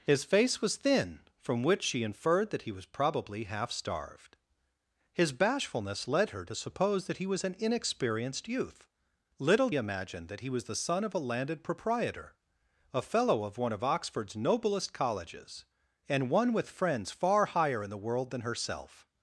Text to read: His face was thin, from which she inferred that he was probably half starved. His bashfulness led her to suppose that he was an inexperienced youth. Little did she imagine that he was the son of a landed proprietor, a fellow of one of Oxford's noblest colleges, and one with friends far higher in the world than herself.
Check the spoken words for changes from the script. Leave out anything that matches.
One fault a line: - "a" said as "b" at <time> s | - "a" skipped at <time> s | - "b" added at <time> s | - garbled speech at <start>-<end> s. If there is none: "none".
- "did she" skipped at 9.7 s